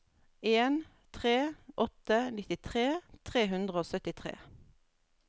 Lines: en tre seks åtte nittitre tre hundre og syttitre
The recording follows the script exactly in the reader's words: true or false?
false